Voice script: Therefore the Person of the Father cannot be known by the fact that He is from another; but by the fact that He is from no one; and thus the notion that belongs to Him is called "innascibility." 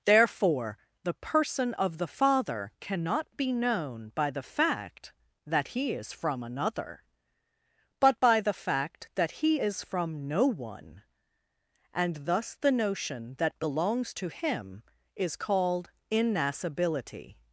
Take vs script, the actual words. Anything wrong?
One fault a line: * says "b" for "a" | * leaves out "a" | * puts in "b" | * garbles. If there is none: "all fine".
all fine